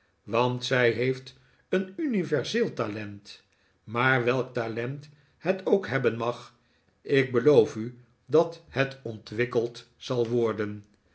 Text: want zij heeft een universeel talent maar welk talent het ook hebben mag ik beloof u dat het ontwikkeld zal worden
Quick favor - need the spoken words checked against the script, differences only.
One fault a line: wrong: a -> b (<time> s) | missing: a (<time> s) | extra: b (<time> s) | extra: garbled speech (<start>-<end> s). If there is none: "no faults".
no faults